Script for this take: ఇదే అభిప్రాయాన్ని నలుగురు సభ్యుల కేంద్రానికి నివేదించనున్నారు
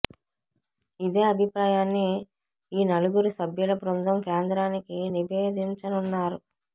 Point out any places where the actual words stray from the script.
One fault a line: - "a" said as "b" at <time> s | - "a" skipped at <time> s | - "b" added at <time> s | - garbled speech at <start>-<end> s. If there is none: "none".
- "ఈ" added at 2.7 s
- "బృందం" added at 3.8 s